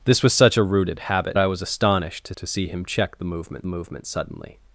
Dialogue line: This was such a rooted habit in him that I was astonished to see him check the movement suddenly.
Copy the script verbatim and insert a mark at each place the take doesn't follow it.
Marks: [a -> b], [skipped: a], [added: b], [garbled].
This was such a rooted habit [skipped: in him that] I was astonished to [added: to] see him check the movement [added: movement] suddenly.